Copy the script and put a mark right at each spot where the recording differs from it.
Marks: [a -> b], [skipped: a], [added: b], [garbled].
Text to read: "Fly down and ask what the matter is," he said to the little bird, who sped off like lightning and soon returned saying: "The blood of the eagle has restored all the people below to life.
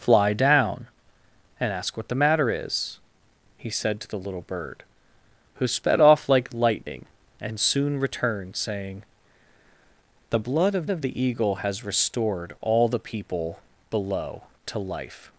"Fly down and ask what the matter is," he said to the little bird, who sped off like lightning and soon returned saying: "The blood of [added: of] the eagle has restored all the people below to life.